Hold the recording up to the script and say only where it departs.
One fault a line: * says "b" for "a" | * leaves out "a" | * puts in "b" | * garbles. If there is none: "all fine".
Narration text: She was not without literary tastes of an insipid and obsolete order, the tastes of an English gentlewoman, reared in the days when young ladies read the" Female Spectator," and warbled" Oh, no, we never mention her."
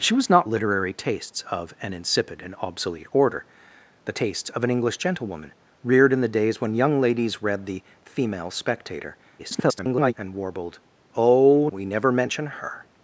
* leaves out "without"
* garbles
* leaves out "no"